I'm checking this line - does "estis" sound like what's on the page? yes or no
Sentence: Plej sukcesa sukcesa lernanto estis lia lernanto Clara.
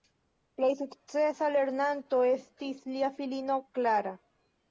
yes